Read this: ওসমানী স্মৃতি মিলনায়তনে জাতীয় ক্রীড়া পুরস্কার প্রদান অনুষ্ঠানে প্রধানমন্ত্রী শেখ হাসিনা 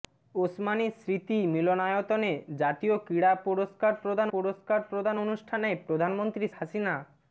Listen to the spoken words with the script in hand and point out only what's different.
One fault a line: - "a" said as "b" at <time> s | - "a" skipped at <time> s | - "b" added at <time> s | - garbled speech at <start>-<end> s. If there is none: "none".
- "পুরস্কার প্রদান" added at 4.3 s
- "শেখ" skipped at 6.5 s